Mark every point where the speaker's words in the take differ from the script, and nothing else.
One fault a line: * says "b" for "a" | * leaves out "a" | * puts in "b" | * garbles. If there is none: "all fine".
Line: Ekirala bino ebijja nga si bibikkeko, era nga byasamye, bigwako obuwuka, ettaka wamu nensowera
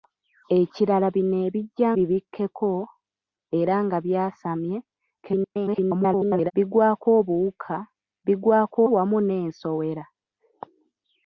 * leaves out "nga si"
* garbles
* says "bigwako" for "ettaka"